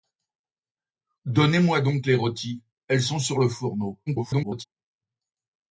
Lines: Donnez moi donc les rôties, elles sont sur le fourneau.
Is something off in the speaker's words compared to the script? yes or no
yes